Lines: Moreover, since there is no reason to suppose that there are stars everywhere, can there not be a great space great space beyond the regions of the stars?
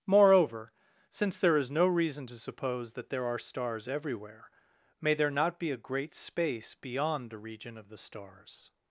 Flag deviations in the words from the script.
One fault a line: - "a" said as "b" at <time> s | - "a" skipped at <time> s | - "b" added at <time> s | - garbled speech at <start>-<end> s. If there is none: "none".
- "can" said as "may" at 5.0 s
- "great space" skipped at 6.8 s
- "regions" said as "region" at 7.4 s